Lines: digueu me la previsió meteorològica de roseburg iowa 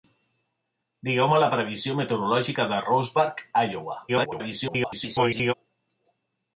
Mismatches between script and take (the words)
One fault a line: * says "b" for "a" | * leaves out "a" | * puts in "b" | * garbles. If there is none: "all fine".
* garbles